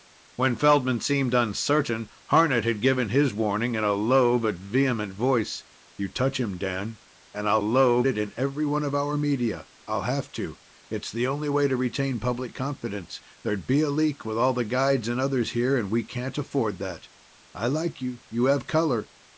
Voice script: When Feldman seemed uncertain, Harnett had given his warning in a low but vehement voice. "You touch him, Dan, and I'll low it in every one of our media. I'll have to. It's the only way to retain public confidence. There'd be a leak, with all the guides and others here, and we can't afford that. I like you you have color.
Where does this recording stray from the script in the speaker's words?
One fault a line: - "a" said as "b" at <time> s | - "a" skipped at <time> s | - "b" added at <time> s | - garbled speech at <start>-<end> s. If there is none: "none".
none